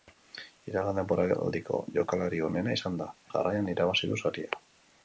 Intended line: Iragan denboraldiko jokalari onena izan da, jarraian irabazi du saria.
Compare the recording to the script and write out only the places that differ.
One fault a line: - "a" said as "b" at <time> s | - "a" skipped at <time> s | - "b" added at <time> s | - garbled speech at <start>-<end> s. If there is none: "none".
none